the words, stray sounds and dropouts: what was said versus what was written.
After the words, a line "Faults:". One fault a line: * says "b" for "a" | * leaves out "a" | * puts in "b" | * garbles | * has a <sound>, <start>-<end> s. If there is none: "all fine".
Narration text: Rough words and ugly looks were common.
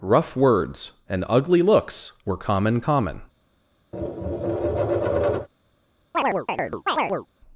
Rough words and ugly looks were common common.
Faults:
* puts in "common"
* has a tap, 3.9-5.5 s
* has a chirp, 6.1-7.3 s